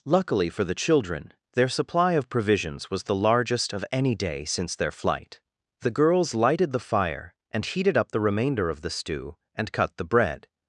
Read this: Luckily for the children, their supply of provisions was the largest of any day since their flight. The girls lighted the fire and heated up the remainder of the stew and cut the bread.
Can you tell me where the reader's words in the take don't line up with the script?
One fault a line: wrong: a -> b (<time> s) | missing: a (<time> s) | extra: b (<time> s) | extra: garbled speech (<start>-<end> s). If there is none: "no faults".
no faults